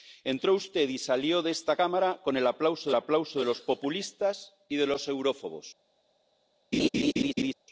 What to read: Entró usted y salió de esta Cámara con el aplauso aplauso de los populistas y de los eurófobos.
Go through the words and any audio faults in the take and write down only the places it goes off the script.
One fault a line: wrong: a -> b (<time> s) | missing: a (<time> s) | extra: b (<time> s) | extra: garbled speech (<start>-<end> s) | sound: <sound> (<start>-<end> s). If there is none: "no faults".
sound: laugh (6.7-7.5 s)